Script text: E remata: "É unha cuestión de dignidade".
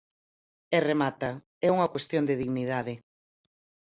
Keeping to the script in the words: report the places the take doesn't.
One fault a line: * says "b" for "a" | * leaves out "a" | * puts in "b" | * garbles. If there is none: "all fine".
all fine